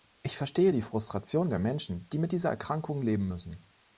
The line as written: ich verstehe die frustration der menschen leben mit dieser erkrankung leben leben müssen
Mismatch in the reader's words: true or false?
true